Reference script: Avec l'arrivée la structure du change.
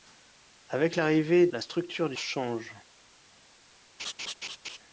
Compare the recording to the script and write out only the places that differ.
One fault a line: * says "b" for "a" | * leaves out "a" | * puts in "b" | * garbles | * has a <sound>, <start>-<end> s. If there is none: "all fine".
* has a laugh, 4.0-4.8 s